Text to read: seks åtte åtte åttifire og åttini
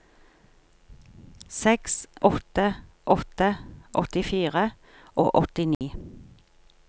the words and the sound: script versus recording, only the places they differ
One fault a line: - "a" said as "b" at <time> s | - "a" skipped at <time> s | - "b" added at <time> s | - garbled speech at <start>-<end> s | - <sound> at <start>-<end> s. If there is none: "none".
- dropout at 5.7-5.8 s